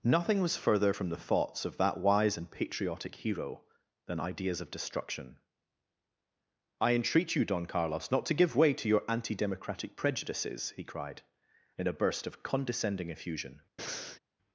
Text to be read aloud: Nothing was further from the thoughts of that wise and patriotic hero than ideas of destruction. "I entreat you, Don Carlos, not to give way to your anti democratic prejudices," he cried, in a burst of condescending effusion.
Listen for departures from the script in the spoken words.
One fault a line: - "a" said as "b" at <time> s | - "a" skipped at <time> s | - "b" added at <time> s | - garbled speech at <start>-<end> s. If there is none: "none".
none